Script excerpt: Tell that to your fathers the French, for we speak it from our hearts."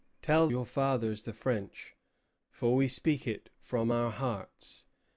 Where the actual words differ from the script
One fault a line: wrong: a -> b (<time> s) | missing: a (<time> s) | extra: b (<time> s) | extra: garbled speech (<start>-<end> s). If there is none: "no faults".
missing: that to (0.5 s)